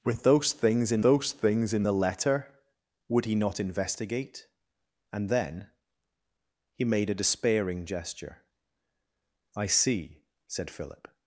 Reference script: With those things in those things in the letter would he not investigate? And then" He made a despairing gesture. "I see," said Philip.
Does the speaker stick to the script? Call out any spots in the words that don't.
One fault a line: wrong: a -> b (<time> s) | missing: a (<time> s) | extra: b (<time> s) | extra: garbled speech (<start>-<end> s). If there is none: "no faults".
no faults